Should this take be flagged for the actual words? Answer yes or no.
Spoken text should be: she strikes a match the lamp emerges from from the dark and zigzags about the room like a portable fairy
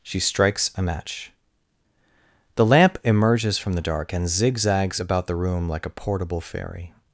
yes